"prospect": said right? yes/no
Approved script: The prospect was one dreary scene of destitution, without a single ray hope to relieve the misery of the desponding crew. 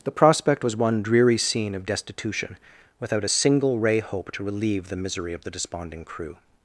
yes